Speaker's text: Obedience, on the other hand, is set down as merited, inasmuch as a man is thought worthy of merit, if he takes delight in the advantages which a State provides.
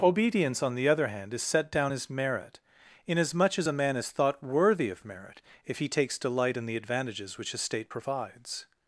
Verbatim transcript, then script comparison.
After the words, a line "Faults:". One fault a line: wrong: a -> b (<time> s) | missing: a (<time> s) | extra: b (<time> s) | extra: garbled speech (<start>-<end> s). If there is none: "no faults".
Obedience, on the other hand, is set down as merit, inasmuch as a man is thought worthy of merit, if he takes delight in the advantages which a State provides.
Faults:
wrong: merited -> merit (2.1 s)